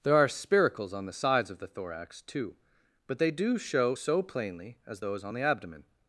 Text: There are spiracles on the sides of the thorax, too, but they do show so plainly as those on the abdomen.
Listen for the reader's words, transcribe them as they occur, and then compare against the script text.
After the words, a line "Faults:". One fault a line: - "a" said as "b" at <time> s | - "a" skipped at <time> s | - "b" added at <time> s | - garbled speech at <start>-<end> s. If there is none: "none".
There are spiracles on the sides of the thorax, too, but they do show so plainly as those on the abdomen.
Faults:
none